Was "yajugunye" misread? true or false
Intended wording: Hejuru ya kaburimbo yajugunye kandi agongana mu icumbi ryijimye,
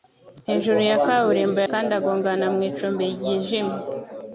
true